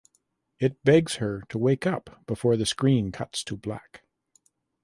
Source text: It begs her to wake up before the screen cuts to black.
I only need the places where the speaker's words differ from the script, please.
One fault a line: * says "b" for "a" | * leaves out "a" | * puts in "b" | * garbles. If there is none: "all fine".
all fine